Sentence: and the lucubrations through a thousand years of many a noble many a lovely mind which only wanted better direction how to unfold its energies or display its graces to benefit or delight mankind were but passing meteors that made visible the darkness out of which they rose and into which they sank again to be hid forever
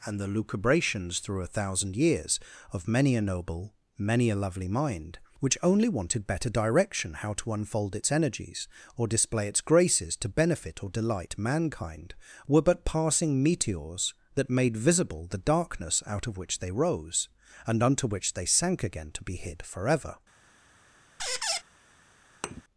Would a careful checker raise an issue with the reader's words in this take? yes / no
yes